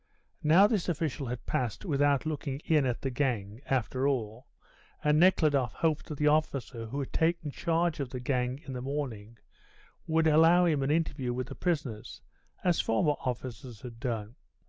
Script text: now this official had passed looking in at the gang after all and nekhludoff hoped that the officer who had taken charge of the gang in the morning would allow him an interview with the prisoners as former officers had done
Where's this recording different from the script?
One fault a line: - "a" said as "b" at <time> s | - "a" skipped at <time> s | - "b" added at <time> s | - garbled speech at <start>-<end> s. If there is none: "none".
- "without" added at 1.9 s